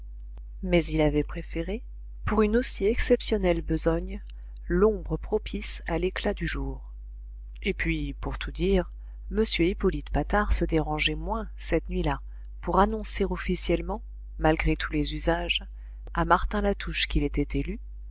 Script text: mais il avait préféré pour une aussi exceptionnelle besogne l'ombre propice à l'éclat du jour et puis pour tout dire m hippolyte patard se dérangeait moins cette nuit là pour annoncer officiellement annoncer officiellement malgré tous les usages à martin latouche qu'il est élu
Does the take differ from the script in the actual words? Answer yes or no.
yes